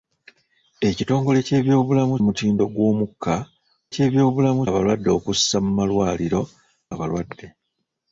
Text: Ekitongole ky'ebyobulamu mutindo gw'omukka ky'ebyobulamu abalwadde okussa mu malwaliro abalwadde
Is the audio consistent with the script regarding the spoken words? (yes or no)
yes